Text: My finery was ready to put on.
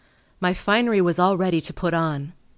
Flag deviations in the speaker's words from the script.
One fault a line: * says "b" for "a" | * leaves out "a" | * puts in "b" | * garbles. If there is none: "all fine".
* puts in "all"